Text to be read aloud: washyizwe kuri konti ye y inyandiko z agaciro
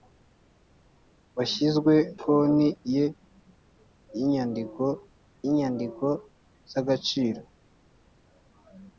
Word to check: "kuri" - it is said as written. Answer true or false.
false